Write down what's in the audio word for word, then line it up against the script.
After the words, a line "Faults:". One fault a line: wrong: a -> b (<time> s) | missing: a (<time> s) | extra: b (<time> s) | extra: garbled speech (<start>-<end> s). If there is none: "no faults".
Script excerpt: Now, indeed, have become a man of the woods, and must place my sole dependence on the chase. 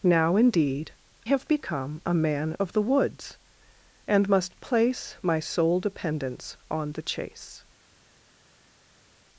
Now, indeed, have become a man of the woods, and must place my sole dependence on the chase.
Faults:
no faults